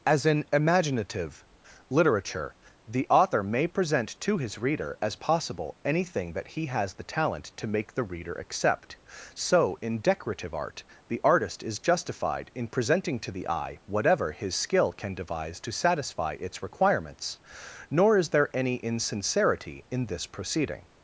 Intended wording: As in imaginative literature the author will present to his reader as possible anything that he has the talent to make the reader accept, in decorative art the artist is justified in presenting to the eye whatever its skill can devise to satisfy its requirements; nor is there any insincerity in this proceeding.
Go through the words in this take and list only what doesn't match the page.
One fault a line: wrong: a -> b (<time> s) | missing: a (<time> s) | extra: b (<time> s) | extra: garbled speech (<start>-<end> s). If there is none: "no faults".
wrong: will -> may (3.4 s)
extra: so (9.3 s)
wrong: its -> his (14.3 s)